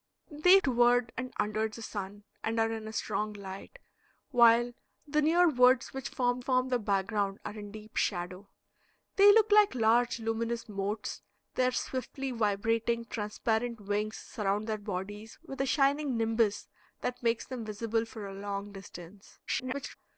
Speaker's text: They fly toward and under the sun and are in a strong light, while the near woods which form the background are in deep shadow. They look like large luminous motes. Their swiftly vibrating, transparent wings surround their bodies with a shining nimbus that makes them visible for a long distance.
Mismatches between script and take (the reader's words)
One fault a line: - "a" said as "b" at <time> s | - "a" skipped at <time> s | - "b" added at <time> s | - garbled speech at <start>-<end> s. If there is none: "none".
- "fly" skipped at 0.6 s
- "form" added at 6.4 s
- garbled speech at 19.5-20.0 s